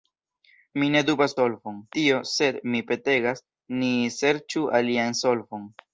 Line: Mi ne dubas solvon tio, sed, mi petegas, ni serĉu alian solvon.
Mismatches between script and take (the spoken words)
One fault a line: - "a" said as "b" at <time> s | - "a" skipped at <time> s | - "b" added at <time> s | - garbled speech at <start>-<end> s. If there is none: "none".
none